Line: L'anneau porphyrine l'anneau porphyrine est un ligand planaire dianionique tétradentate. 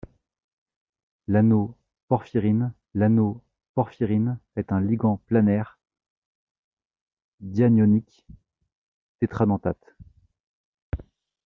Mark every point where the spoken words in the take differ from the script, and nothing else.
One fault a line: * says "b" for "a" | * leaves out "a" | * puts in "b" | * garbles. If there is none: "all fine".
all fine